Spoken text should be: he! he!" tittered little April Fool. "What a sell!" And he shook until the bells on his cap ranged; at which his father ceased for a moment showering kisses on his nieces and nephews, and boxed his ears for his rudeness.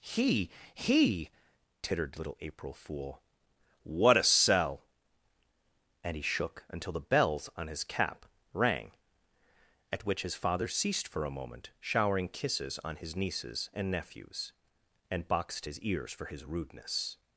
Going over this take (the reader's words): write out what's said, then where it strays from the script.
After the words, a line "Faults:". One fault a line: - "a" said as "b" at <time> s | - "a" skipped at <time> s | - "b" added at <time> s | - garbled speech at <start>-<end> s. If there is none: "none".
he! he!" tittered little April Fool. "What a sell!" And he shook until the bells on his cap rang; at which his father ceased for a moment showering kisses on his nieces and nephews, and boxed his ears for his rudeness.
Faults:
- "ranged" said as "rang" at 8.5 s